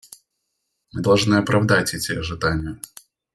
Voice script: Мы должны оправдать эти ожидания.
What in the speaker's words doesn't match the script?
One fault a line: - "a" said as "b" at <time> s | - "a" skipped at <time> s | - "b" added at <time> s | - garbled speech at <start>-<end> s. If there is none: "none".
none